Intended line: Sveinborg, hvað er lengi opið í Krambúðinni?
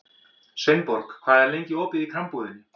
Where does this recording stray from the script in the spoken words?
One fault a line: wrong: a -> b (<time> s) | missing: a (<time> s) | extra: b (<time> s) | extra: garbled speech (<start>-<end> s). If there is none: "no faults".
no faults